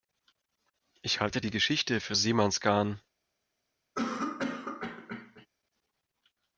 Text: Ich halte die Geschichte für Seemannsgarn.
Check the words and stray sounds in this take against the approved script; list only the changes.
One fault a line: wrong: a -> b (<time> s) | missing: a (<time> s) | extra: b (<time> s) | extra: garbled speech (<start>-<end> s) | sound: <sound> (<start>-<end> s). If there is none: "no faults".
sound: cough (4.0-5.5 s)